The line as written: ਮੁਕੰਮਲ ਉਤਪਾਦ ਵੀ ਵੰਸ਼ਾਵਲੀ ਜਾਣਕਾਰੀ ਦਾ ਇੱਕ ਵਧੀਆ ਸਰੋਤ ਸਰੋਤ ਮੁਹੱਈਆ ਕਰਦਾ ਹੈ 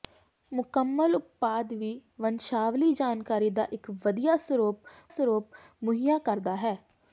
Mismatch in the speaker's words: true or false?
false